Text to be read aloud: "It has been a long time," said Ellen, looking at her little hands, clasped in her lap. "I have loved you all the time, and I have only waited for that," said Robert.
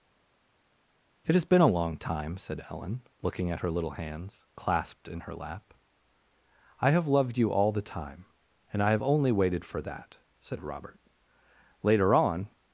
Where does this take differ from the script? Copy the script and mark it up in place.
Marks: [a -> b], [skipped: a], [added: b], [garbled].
"It has been a long time," said Ellen, looking at her little hands, clasped in her lap. "I have loved you all the time, and I have only waited for that," said Robert. [added: Later on]